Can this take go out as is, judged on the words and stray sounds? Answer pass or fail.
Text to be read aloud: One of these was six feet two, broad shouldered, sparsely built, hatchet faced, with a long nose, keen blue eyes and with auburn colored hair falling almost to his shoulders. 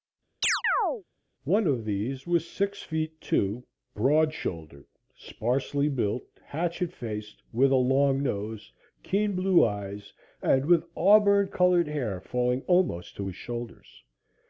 fail